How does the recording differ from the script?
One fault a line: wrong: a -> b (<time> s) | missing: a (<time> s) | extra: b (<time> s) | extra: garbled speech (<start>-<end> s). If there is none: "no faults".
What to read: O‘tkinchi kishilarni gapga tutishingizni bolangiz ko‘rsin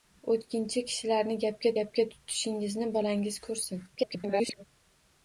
extra: gapga (1.8 s)
extra: garbled speech (4.0-4.6 s)